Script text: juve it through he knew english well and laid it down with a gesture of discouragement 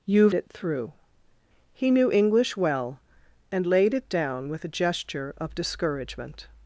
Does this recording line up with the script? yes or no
yes